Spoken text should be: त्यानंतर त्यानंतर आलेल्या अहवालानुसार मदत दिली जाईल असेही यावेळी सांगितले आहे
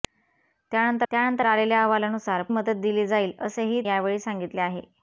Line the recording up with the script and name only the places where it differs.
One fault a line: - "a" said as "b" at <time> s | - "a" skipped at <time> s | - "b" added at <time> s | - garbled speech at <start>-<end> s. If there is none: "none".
none